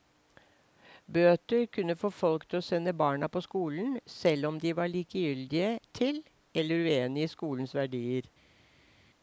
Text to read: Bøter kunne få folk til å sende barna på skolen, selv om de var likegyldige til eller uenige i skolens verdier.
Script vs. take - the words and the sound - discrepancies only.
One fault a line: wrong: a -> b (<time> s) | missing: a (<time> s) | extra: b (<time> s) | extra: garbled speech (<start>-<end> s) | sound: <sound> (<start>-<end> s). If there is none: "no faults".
no faults